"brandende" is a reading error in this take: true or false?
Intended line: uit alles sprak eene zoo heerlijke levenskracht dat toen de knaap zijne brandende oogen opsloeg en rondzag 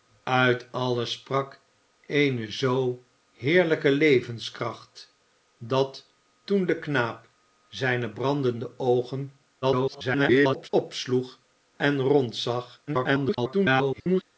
false